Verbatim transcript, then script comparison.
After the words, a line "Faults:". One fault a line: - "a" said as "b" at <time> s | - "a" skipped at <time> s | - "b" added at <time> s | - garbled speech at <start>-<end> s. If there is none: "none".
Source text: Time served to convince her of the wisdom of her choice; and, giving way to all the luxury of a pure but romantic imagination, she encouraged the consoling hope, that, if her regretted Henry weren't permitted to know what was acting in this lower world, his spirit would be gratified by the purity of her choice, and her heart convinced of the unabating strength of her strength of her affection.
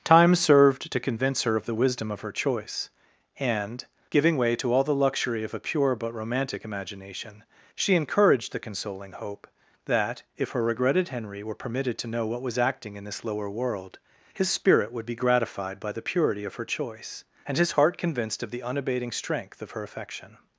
Time served to convince her of the wisdom of her choice; and, giving way to all the luxury of a pure but romantic imagination, she encouraged the consoling hope, that, if her regretted Henry were permitted to know what was acting in this lower world, his spirit would be gratified by the purity of her choice, and his heart convinced of the unabating strength of her affection.
Faults:
- "weren't" said as "were" at 11.4 s
- "her" said as "his" at 17.6 s
- "strength of her" skipped at 19.8 s